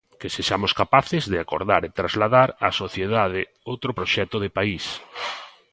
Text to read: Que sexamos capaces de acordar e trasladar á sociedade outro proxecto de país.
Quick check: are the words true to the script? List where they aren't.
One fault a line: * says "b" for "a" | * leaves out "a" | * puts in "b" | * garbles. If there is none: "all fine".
all fine